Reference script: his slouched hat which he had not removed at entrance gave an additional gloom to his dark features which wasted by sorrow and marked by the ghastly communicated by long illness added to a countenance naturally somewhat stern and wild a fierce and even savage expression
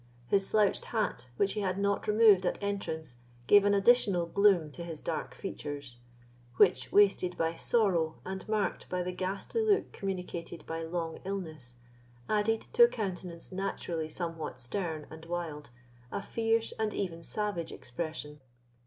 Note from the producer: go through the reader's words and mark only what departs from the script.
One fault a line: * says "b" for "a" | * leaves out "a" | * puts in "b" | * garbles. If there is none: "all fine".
* puts in "look"